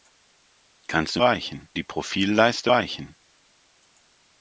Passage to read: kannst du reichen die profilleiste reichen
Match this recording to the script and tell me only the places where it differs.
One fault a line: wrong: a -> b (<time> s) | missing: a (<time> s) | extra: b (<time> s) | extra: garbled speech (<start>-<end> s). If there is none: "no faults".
no faults